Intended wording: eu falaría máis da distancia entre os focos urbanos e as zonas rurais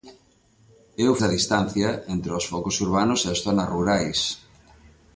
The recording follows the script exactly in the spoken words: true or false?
false